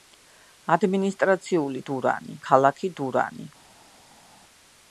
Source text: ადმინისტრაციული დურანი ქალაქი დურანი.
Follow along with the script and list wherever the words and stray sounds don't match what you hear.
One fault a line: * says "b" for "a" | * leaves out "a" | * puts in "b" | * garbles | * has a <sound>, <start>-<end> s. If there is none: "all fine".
all fine